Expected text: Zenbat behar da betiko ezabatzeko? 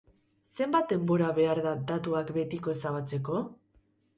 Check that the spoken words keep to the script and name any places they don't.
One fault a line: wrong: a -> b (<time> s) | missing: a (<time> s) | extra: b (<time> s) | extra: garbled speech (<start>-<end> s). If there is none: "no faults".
extra: denbora (0.9 s)
extra: datuak (1.9 s)